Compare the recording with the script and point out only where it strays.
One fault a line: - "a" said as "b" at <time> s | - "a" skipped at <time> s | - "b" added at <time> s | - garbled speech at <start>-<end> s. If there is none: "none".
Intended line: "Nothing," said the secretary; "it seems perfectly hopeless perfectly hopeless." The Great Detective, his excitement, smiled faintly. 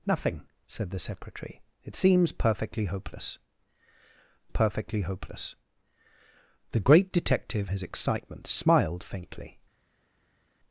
none